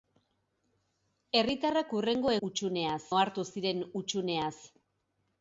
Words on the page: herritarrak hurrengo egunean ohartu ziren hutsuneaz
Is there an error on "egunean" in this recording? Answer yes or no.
yes